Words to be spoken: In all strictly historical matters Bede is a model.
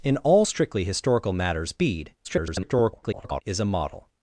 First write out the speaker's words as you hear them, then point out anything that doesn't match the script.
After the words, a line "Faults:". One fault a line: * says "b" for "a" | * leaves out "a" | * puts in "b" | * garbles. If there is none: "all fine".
In all strictly historical matters Bede [garbled] is a model.
Faults:
* garbles